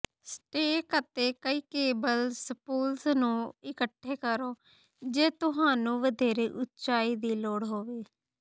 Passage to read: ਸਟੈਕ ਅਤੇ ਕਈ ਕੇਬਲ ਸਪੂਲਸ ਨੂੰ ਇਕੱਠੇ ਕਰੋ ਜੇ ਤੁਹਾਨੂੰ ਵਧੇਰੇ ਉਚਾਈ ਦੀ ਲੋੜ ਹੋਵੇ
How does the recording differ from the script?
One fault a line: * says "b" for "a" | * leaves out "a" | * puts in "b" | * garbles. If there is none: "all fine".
all fine